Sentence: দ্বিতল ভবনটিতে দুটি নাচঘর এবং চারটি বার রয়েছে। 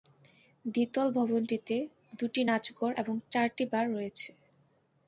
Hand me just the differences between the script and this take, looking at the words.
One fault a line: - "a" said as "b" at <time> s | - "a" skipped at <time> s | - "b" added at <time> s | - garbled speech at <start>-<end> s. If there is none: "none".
none